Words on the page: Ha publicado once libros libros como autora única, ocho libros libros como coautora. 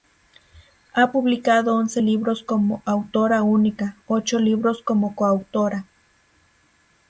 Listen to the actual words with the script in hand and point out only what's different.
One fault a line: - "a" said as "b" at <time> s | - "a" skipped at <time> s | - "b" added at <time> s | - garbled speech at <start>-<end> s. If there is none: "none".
- "libros" skipped at 2.4 s
- "libros" skipped at 4.8 s